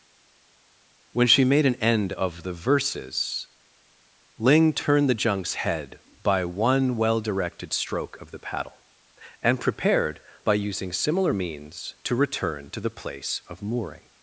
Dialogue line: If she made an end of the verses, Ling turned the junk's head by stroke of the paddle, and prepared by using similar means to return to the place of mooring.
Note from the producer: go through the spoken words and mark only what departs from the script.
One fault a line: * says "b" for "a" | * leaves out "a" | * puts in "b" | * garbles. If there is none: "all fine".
* says "When" for "If"
* puts in "one well directed"